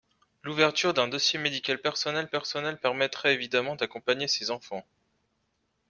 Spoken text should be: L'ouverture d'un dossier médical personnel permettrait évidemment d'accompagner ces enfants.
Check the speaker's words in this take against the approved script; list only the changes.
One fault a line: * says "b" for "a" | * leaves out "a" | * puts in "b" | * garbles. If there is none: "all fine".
* puts in "personnel"